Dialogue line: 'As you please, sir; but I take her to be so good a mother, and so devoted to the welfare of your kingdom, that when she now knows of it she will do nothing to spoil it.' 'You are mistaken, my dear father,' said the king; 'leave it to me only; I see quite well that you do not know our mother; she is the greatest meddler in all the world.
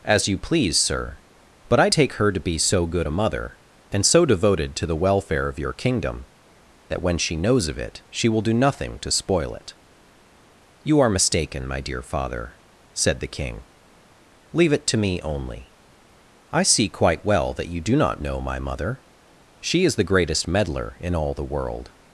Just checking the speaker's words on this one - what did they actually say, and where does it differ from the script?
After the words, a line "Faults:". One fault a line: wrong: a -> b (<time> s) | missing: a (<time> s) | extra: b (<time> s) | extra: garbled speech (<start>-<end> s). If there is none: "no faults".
'As you please, sir; but I take her to be so good a mother, and so devoted to the welfare of your kingdom, that when she knows of it she will do nothing to spoil it.' 'You are mistaken, my dear father,' said the king; 'leave it to me only; I see quite well that you do not know my mother; she is the greatest meddler in all the world.
Faults:
missing: now (7.4 s)
wrong: our -> my (18.4 s)